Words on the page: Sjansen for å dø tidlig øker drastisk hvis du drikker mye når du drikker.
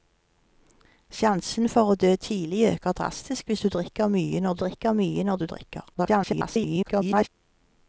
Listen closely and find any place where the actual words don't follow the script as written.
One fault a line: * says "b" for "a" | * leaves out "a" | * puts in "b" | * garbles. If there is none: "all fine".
* puts in "drikker mye når"
* garbles